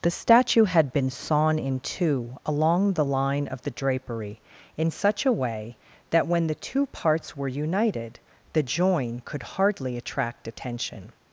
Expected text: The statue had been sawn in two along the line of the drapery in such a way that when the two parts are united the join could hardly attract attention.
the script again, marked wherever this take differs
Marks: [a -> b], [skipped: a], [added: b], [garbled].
The statue had been sawn in two along the line of the drapery in such a way that when the two parts [are -> were] united the join could hardly attract attention.